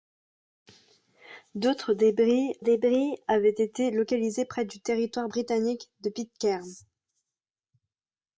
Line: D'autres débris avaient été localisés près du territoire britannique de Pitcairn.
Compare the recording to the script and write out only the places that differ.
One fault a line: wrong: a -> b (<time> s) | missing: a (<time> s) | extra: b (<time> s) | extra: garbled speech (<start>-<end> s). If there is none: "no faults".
extra: débris (2.6 s)